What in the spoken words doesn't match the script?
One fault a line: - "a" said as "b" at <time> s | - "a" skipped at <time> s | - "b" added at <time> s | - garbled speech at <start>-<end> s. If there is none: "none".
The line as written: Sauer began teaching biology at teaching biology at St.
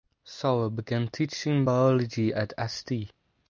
- "teaching biology at" skipped at 2.5 s